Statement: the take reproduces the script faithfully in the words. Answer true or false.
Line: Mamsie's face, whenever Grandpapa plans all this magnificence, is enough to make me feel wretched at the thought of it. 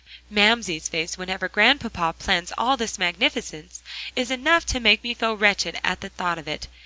true